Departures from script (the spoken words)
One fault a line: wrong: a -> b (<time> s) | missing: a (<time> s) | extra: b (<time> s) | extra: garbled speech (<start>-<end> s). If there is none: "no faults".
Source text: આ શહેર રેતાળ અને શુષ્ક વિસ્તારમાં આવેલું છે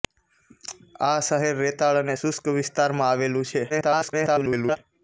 extra: garbled speech (3.7-4.8 s)